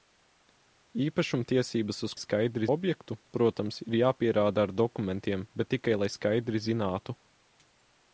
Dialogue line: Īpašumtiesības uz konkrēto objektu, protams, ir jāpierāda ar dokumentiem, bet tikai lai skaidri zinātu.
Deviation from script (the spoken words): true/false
true